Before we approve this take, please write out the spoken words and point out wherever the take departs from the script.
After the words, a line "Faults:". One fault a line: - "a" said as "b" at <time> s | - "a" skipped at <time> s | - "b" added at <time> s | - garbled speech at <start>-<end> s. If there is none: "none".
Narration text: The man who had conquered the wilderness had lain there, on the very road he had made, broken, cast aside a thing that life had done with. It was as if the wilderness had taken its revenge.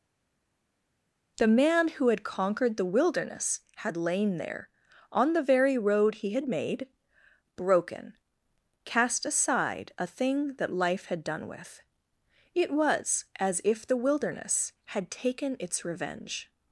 The man who had conquered the wilderness had lain there, on the very road he had made, broken, cast aside a thing that life had done with. It was as if the wilderness had taken its revenge.
Faults:
none